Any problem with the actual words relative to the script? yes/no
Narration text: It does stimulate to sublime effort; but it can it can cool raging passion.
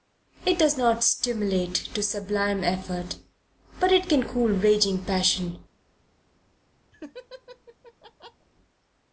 yes